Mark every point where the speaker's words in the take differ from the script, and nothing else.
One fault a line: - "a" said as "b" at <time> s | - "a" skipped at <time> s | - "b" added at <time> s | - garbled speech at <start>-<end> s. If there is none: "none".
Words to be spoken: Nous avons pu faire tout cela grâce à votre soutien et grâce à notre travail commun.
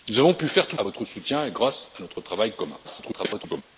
- "cela grâce" skipped at 0.8 s
- garbled speech at 2.8-3.6 s